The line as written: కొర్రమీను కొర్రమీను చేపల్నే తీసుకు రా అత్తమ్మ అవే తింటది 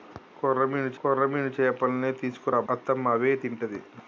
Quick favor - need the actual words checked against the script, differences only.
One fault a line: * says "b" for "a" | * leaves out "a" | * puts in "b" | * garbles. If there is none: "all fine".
all fine